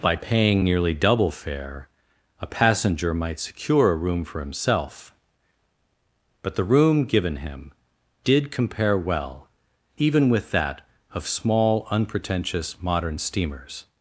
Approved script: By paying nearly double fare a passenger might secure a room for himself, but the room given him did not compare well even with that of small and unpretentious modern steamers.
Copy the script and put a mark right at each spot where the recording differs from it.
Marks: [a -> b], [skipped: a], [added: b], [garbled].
By paying nearly double fare a passenger might secure a room for himself, but the room given him did [skipped: not] compare well even with that of small [skipped: and] unpretentious modern steamers.